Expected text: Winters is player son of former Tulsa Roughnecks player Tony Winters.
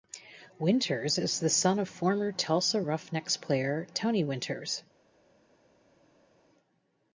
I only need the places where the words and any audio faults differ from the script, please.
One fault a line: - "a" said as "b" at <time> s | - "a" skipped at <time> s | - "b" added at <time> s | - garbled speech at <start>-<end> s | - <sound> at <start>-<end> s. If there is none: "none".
- "player" said as "the" at 1.4 s